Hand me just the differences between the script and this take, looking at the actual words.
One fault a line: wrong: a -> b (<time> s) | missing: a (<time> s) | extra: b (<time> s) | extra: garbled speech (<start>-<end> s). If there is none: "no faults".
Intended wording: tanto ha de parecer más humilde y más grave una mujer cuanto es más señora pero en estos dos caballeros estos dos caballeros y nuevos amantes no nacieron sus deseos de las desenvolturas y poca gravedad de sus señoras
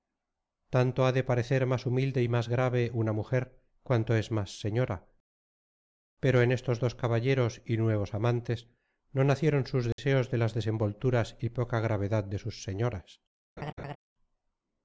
missing: estos dos caballeros (7.6 s)